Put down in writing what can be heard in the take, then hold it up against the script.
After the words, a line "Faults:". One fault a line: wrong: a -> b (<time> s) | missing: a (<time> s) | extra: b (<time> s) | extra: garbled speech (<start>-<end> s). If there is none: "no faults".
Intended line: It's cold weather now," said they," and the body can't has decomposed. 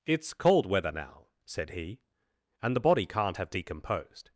It's cold weather now," said he," and the body can't have decomposed.
Faults:
wrong: they -> he (1.7 s)
wrong: has -> have (3.3 s)